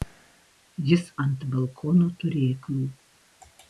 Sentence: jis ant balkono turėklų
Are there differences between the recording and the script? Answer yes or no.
no